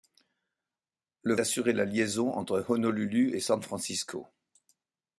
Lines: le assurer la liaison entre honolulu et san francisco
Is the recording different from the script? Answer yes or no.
no